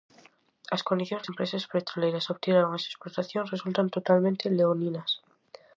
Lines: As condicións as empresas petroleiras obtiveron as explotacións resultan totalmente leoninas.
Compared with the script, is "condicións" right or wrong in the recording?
right